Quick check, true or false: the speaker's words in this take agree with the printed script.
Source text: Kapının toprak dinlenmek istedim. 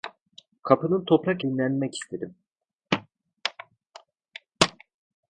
true